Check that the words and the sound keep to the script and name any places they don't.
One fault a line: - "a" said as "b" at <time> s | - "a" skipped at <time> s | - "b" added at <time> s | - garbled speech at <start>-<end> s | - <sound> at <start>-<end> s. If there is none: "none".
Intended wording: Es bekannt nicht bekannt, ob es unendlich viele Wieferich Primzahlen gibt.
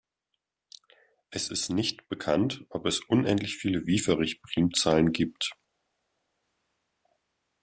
- "bekannt" said as "ist" at 1.5 s